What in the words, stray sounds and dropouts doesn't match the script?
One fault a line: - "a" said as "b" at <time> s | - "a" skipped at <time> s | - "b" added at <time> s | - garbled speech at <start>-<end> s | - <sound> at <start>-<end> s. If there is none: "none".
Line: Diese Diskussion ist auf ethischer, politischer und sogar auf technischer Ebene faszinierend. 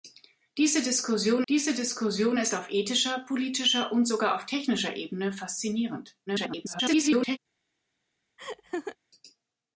- "diese Diskussion" added at 1.5 s
- garbled speech at 6.3-7.4 s
- laugh at 8.4-9.0 s